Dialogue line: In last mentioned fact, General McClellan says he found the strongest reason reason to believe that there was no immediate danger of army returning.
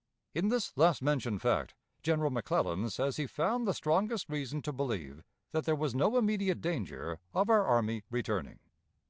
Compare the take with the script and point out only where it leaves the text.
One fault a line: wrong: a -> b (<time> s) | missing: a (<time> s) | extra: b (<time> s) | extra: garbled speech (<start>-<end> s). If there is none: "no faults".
extra: this (0.5 s)
missing: reason (4.6 s)
extra: our (7.5 s)